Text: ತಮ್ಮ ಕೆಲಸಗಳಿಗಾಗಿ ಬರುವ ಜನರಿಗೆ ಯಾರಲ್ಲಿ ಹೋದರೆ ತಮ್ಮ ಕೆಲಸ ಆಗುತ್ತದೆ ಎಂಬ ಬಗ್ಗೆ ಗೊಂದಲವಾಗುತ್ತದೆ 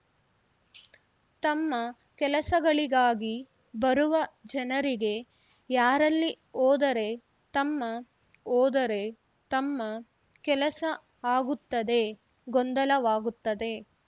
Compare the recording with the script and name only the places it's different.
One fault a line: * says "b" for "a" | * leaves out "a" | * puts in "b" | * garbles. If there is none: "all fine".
* puts in "ಹೋದರೆ ತಮ್ಮ"
* leaves out "ಎಂಬ ಬಗ್ಗೆ"